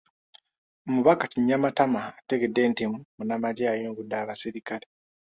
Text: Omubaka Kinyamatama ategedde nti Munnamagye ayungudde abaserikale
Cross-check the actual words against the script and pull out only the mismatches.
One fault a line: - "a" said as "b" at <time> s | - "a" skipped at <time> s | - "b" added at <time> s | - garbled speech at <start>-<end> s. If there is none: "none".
none